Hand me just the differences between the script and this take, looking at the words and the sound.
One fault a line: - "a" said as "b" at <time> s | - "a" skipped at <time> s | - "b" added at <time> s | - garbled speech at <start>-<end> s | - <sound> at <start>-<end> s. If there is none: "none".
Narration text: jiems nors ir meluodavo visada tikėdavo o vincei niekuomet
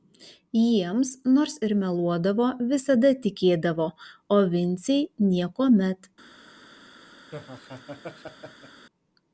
- laugh at 7.3-8.9 s